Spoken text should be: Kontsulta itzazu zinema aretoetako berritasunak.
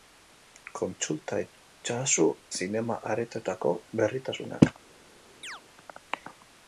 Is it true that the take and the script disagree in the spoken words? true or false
false